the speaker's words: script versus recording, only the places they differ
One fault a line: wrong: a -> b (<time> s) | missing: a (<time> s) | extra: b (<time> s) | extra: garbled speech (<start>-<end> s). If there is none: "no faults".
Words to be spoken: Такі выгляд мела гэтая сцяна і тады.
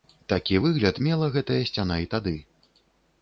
no faults